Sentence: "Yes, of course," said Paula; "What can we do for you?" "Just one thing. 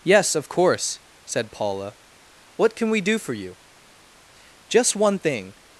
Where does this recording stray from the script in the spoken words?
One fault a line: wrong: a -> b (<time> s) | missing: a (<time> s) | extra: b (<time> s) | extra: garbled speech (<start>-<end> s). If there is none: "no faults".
no faults